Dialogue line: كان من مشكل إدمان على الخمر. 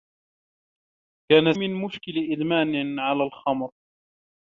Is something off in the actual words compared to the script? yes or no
no